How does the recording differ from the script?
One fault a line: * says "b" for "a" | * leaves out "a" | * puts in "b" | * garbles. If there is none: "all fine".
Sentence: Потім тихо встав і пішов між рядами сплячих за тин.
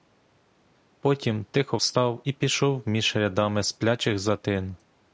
all fine